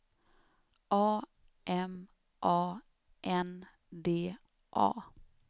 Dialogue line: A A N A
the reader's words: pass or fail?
fail